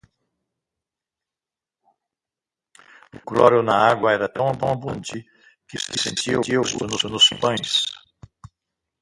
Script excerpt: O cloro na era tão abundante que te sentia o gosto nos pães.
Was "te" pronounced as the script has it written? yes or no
no